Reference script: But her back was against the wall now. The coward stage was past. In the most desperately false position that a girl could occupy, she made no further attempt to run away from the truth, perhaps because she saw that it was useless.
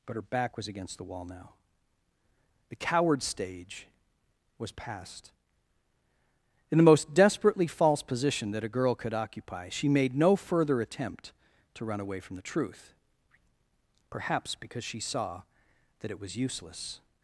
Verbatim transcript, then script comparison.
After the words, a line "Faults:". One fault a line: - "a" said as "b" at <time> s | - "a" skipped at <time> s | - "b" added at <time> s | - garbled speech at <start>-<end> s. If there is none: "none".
But her back was against the wall now. The coward stage was past. In the most desperately false position that a girl could occupy, she made no further attempt to run away from the truth, perhaps because she saw that it was useless.
Faults:
none